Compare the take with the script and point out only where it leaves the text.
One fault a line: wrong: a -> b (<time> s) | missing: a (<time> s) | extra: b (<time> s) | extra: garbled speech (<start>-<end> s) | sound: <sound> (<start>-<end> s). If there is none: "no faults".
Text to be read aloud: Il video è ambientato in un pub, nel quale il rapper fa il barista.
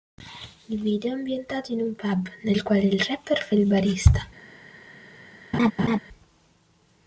sound: laugh (5.5-6.0 s)